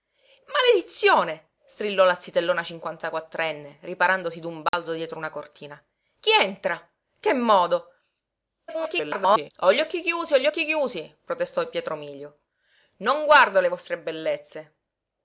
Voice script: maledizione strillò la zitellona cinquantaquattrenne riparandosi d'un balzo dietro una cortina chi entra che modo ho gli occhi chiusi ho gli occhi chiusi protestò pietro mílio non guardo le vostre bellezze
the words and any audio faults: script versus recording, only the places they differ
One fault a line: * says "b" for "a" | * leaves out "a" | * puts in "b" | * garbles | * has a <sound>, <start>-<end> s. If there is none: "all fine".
* has a dropout, 4.7-4.7 s
* garbles